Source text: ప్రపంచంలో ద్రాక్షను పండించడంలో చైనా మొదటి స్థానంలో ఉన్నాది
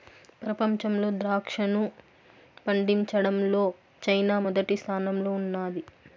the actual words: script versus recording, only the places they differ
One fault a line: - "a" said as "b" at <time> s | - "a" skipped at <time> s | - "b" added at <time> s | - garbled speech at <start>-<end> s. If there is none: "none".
none